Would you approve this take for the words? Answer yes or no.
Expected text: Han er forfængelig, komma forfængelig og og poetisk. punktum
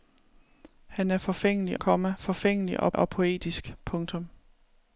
yes